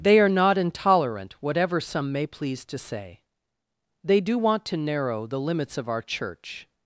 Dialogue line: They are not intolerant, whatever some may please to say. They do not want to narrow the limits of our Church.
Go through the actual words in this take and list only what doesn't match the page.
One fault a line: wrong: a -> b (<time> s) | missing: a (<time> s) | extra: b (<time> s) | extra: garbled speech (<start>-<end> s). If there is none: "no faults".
missing: not (4.3 s)